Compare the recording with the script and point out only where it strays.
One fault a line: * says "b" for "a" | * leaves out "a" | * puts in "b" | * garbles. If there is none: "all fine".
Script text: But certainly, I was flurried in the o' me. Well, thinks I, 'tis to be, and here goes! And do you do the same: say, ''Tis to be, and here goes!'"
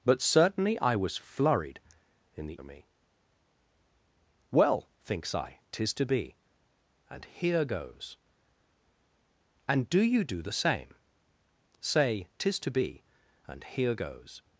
all fine